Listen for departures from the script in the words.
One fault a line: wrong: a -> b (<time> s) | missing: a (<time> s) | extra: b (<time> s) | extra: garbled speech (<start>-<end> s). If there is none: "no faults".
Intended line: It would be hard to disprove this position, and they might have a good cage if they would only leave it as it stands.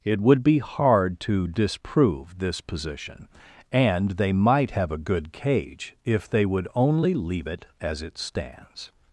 no faults